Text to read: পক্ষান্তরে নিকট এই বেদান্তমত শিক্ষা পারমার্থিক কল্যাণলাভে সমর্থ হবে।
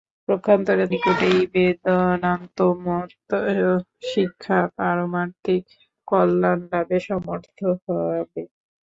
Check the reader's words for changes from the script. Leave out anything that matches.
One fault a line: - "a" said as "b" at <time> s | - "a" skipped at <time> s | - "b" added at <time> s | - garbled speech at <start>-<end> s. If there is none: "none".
none